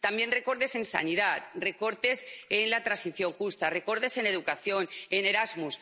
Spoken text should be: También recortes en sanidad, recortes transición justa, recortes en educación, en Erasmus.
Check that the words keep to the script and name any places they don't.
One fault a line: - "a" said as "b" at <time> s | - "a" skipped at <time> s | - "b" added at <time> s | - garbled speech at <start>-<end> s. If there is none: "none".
- "en la" added at 2.5 s